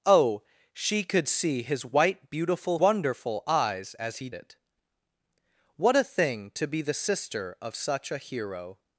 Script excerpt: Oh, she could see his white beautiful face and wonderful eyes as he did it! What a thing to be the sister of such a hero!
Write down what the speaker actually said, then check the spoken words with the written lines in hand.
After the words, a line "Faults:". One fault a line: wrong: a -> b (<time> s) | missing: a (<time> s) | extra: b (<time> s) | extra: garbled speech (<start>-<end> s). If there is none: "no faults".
Oh, she could see his white beautiful wonderful eyes as he it! What a thing to be the sister of such a hero!
Faults:
missing: face and (2.8 s)
missing: did (4.3 s)